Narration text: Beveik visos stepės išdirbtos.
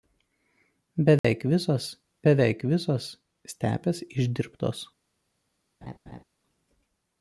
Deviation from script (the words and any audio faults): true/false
true